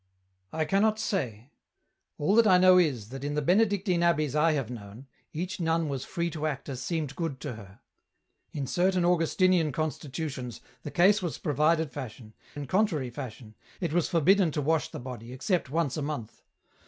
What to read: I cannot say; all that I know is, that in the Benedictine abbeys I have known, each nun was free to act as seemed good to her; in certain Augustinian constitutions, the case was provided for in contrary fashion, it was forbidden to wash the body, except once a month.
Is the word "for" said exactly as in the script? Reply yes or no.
no